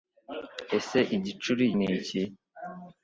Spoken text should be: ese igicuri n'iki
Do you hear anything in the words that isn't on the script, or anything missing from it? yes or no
no